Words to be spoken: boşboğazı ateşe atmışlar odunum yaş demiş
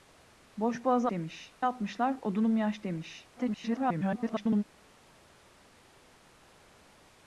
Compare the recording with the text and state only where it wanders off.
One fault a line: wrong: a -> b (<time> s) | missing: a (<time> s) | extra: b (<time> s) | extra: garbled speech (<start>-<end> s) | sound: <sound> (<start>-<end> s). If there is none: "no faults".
wrong: ateşe -> demiş (1.1 s)
extra: garbled speech (3.4-4.6 s)